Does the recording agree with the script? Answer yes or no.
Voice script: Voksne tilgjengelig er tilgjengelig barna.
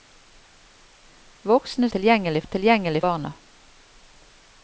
yes